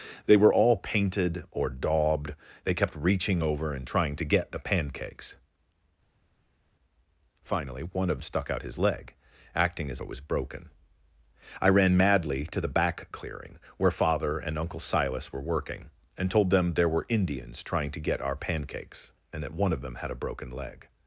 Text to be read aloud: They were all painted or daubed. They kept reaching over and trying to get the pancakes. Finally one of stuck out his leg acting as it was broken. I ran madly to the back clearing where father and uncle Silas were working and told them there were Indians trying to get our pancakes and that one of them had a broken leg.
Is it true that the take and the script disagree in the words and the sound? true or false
false